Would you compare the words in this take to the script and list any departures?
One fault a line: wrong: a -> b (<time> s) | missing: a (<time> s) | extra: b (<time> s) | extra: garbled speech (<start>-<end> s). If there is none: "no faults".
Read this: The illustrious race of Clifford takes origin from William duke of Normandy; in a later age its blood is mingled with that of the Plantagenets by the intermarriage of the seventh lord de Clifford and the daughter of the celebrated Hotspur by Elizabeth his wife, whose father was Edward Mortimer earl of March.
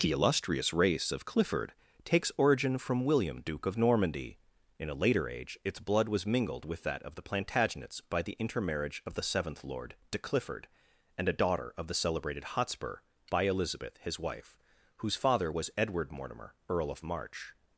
wrong: is -> was (6.1 s)
wrong: the -> a (11.3 s)